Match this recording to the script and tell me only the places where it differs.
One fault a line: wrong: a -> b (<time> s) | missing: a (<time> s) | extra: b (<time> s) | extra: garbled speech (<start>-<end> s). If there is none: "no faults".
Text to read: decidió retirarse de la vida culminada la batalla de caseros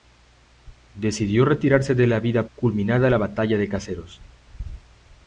no faults